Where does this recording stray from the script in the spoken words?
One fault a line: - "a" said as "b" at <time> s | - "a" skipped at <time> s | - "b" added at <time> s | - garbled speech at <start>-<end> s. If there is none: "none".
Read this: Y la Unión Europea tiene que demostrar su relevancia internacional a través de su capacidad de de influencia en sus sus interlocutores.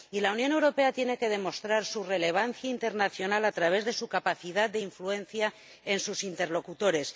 - "de" skipped at 4.8 s
- "sus" skipped at 6.2 s